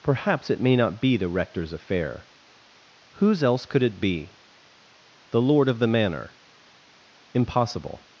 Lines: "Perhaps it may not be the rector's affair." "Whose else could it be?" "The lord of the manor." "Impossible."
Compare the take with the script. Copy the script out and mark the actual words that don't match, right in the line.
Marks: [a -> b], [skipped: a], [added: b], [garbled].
"Perhaps it may not be the rector's affair." "Whose else could it be?" "The lord of the manor." "Impossible."